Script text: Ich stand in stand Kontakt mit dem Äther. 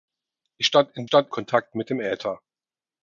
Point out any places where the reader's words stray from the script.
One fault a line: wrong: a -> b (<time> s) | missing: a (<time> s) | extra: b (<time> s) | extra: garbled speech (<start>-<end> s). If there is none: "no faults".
no faults